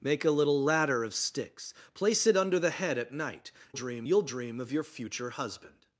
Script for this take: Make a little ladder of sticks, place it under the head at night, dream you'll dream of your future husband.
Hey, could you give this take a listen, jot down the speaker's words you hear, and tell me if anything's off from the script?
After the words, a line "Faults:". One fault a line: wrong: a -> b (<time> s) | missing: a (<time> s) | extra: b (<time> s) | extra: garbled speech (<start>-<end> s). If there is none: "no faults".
Make a little ladder of sticks, place it under the head at night, dream you'll dream of your future husband.
Faults:
no faults